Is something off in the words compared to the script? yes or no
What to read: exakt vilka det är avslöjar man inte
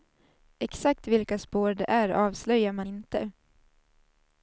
yes